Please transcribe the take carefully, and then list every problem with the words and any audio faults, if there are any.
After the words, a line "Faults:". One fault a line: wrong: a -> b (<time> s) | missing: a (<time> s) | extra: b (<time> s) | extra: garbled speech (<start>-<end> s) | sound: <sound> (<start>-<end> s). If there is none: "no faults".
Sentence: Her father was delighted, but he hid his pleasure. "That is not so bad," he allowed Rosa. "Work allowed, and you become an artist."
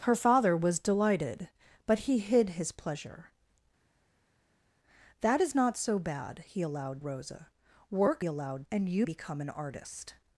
Her father was delighted, but he hid his pleasure. "That is not so bad," he allowed Rosa. "Work allowed, and you become an artist."
Faults:
no faults